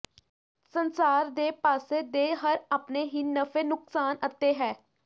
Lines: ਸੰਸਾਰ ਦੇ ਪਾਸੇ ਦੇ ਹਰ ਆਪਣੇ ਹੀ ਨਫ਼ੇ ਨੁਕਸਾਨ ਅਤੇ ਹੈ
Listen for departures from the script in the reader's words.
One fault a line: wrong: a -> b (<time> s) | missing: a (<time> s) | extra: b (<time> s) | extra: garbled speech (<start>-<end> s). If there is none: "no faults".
no faults